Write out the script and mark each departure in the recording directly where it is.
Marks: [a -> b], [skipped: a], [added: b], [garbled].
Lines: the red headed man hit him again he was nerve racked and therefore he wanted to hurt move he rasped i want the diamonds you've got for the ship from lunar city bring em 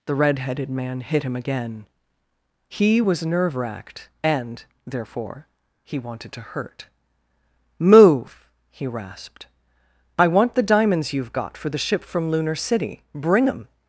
the red headed man hit him again he was nerve racked and therefore he wanted to hurt move he rasped i want the diamonds you've got for the ship from lunar city bring em